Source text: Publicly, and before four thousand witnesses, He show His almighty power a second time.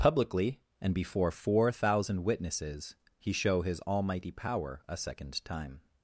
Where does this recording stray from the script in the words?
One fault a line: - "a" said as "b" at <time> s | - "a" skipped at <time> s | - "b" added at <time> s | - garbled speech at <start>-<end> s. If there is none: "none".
none